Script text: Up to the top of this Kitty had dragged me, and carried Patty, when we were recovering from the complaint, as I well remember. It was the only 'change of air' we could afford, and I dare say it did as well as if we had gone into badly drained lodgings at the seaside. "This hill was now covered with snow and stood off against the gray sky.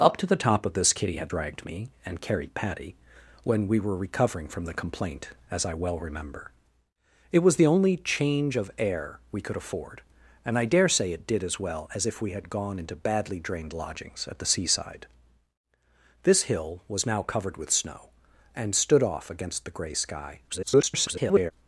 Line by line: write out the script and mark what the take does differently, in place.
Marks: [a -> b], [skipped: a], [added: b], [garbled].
Up to the top of this Kitty had dragged me, and carried Patty, when we were recovering from the complaint, as I well remember. It was the only 'change of air' we could afford, and I dare say it did as well as if we had gone into badly drained lodgings at the seaside. "This hill was now covered with snow and stood off against the gray sky. [garbled]